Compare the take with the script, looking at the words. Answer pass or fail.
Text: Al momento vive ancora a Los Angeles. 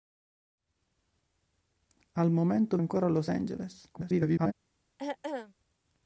fail